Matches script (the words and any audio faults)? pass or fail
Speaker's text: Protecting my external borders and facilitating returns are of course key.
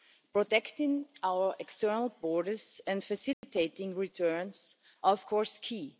fail